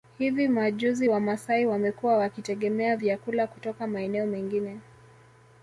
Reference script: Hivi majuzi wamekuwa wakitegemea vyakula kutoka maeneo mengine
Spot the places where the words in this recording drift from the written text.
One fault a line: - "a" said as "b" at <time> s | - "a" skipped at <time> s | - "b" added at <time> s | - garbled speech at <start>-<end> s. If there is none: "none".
- "wamasai" added at 1.1 s